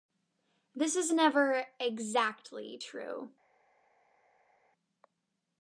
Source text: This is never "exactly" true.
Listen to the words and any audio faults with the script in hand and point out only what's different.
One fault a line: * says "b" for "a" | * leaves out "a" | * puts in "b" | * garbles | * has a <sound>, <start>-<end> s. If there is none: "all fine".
all fine